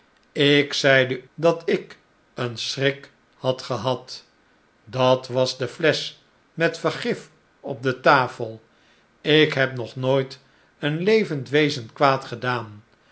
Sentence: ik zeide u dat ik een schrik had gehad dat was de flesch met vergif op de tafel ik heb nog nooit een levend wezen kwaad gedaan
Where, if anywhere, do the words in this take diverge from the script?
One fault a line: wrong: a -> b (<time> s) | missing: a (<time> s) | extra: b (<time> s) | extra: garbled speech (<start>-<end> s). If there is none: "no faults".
missing: u (1.2 s)